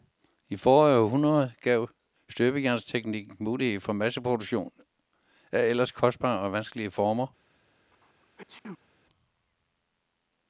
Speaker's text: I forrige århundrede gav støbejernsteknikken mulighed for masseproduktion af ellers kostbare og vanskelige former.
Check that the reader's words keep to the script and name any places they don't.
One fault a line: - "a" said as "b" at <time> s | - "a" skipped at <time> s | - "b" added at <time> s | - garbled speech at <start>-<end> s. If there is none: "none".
none